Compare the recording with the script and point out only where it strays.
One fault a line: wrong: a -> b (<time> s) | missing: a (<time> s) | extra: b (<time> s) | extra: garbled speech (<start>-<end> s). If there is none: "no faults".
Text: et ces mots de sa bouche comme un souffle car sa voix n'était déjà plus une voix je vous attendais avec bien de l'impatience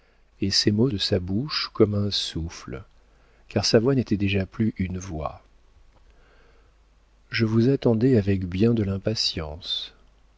no faults